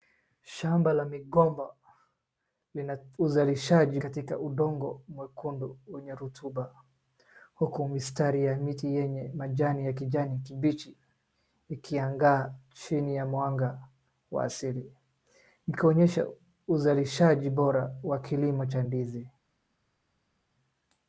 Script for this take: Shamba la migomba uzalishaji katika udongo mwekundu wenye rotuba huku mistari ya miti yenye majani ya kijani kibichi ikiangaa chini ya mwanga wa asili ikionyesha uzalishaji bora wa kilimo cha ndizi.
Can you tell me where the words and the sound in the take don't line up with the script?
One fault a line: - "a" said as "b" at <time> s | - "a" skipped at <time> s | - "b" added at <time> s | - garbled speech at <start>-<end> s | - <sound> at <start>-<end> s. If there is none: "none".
none